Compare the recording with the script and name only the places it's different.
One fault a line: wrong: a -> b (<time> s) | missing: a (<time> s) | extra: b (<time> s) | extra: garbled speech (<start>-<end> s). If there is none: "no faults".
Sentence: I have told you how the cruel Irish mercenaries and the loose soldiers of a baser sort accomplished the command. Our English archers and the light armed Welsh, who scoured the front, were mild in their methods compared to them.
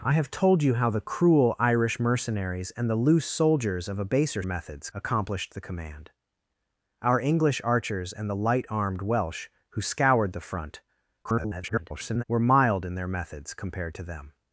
wrong: sort -> methods (4.4 s)
extra: garbled speech (11.2-12.2 s)